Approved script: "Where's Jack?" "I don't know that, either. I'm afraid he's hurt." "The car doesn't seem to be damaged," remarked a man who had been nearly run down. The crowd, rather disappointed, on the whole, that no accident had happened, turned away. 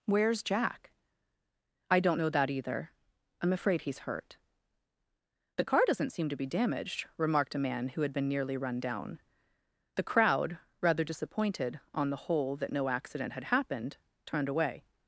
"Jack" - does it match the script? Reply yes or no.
yes